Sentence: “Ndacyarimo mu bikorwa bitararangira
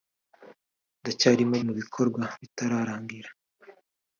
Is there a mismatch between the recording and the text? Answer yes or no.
no